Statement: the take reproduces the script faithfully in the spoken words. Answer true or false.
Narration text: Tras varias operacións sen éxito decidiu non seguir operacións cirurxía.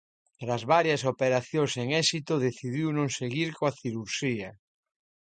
false